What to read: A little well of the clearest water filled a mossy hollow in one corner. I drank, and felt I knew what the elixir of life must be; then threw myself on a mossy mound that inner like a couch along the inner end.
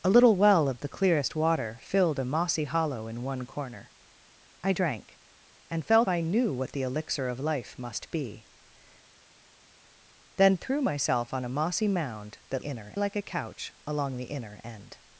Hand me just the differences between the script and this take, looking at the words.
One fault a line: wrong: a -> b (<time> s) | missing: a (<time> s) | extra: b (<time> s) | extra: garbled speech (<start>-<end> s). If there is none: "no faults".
no faults